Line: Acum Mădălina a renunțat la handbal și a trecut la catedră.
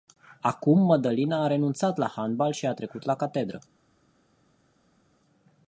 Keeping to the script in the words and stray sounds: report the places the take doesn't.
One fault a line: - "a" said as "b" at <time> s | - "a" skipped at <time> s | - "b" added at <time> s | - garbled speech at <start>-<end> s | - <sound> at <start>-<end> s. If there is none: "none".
none